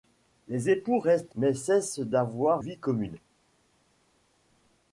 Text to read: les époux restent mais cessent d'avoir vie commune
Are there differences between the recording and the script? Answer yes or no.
no